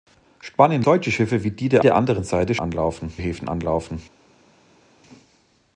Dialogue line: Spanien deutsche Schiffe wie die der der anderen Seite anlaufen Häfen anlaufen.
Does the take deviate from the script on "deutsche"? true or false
false